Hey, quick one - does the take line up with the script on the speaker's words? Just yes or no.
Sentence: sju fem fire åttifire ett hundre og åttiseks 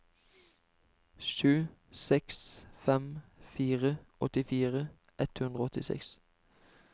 no